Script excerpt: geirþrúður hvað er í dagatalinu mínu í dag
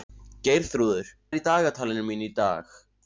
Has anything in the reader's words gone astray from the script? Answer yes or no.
yes